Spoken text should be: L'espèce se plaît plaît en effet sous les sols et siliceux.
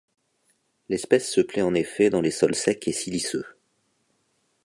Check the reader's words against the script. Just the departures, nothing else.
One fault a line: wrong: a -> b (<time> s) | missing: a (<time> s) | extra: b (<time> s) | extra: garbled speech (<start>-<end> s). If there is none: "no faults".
missing: plaît (1.6 s)
wrong: sous -> dans (2.1 s)
extra: secs (2.5 s)